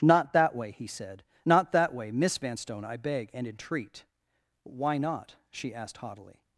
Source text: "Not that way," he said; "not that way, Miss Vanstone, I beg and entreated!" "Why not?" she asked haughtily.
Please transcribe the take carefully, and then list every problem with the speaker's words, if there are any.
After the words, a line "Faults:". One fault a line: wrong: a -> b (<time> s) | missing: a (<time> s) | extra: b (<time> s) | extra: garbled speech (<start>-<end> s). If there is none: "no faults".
"Not that way," he said; "not that way, Miss Vanstone, I beg and entreat!" "Why not?" she asked haughtily.
Faults:
wrong: entreated -> entreat (3.5 s)